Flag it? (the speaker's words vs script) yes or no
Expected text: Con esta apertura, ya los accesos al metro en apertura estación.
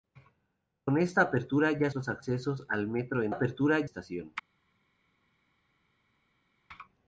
no